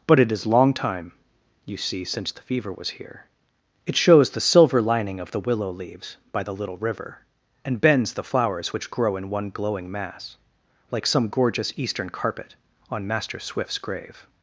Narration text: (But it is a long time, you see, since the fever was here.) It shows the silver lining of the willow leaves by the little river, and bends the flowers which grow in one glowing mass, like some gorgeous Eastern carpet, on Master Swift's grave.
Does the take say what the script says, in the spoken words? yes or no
no